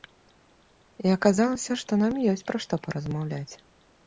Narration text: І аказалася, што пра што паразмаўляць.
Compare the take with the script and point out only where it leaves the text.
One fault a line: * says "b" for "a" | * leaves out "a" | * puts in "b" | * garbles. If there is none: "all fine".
* puts in "нам ёсць"